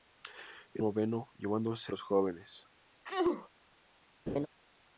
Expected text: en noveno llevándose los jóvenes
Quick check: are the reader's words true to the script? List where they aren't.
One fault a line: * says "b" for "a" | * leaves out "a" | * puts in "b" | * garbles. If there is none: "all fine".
all fine